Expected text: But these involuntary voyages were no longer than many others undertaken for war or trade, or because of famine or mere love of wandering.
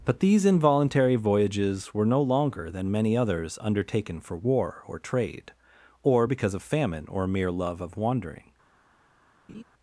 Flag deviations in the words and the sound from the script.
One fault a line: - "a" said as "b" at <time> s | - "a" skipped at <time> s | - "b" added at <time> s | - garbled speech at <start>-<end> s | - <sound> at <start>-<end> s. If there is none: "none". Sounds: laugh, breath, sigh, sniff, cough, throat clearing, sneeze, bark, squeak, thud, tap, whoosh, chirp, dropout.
- laugh at 9.5-9.6 s